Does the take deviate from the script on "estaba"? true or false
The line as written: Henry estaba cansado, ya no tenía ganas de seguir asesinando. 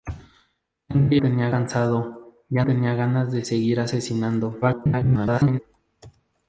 true